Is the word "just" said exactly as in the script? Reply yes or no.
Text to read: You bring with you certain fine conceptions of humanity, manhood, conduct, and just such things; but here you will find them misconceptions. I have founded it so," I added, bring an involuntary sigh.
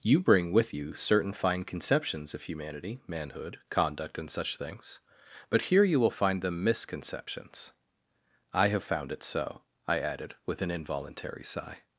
no